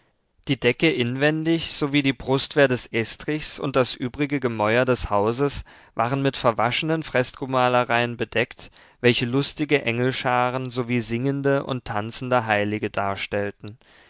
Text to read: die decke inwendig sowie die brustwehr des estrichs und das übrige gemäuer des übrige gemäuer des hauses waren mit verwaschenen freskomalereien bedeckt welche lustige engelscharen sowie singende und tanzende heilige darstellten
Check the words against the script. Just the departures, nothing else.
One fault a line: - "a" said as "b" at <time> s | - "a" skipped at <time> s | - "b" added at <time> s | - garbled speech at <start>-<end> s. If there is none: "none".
- "übrige gemäuer des" skipped at 5.1 s